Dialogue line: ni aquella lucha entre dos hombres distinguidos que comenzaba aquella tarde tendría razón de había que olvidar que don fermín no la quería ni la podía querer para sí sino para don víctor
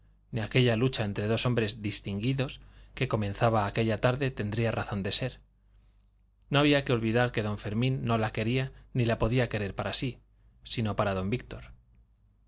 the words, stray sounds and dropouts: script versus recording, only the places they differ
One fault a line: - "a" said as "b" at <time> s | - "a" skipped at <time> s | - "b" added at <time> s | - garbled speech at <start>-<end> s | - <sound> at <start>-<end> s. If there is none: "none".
- "ser no" added at 5.1 s